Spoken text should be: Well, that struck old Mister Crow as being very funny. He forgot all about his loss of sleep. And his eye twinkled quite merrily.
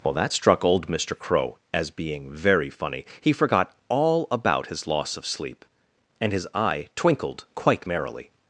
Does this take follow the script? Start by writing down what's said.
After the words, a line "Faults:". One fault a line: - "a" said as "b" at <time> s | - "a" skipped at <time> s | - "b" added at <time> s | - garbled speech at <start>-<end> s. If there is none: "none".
Well, that struck old Mister Crow as being very funny. He forgot all about his loss of sleep. And his eye twinkled quite merrily.
Faults:
none